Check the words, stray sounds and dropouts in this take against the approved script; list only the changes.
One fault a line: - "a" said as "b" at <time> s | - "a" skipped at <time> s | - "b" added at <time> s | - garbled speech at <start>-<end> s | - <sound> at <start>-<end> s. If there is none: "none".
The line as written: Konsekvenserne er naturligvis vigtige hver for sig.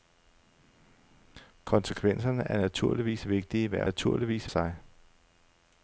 - "for" said as "naturligvis" at 3.8 s